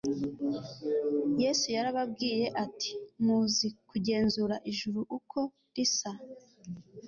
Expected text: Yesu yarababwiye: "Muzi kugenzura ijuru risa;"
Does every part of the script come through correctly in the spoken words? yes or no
no